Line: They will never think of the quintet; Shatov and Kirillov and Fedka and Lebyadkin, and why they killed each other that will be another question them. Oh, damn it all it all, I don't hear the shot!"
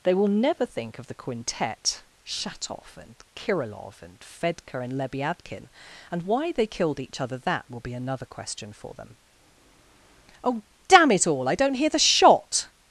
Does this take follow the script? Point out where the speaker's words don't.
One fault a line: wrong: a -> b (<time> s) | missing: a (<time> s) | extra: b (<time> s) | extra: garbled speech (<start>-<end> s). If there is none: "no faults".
extra: for (8.7 s)
missing: it all (11.5 s)